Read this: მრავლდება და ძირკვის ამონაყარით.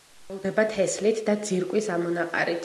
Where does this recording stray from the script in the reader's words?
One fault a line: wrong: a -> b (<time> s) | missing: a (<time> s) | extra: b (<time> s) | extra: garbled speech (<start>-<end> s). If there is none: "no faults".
extra: თესლით (0.8 s)